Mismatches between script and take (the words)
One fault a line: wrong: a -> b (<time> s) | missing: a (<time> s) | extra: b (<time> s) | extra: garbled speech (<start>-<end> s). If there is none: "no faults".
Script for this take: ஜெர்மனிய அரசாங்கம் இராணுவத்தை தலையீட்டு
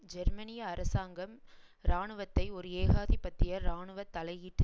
extra: ஒரு ஏகாதிபத்திய இராணுவ (2.5 s)